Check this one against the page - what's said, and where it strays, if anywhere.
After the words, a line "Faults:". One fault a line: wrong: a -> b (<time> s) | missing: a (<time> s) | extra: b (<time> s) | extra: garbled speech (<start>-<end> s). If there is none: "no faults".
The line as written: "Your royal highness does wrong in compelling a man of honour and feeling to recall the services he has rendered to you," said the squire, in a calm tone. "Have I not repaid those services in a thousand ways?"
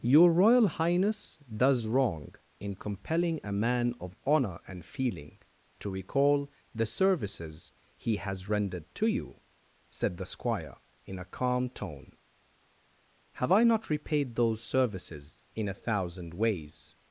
"Your royal highness does wrong in compelling a man of honour and feeling to recall the services he has rendered to you," said the squire, in a calm tone. "Have I not repaid those services in a thousand ways?"
Faults:
no faults